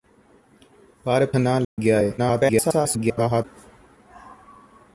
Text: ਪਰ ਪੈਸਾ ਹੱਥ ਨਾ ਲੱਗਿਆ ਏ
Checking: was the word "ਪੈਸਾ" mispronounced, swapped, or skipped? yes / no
yes